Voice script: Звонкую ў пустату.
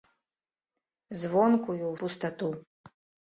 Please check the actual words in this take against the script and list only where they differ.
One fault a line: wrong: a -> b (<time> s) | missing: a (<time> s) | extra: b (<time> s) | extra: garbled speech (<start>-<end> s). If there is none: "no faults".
no faults